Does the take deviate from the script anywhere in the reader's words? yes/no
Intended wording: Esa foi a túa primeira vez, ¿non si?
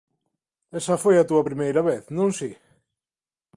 no